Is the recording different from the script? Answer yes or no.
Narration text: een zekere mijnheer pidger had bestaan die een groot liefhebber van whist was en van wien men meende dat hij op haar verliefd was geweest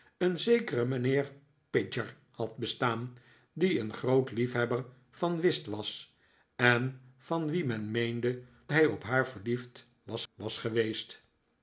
yes